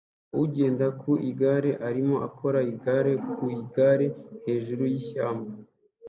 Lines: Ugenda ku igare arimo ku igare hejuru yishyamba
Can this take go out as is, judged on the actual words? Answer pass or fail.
fail